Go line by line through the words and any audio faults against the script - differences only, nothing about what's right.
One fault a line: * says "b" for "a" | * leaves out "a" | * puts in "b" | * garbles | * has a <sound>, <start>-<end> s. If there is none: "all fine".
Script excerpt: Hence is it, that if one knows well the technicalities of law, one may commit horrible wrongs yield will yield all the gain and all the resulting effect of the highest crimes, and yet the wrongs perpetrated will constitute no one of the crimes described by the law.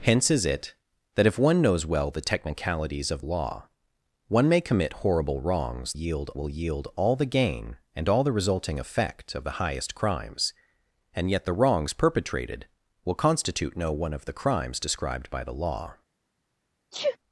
* has a sneeze, 16.9-17.2 s